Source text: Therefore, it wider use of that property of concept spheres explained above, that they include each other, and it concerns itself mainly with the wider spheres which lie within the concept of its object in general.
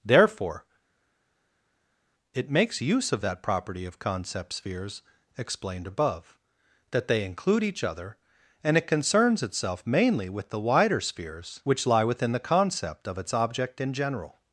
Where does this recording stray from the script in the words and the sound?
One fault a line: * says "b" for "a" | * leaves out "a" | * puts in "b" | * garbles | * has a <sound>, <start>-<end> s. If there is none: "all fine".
* says "makes" for "wider"